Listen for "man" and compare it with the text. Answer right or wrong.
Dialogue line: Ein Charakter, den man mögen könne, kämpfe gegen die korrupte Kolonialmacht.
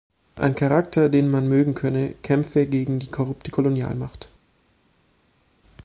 right